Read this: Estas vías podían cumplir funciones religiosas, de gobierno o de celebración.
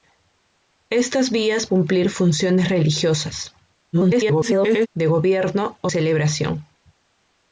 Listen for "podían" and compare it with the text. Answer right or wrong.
wrong